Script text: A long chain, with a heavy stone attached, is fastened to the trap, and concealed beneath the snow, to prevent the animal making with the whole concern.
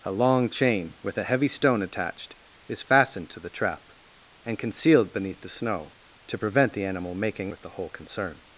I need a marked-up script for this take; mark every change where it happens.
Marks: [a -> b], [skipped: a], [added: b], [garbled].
A long chain, with a heavy stone attached, is fastened to the trap, and concealed beneath the snow, to prevent the animal making with the whole concern.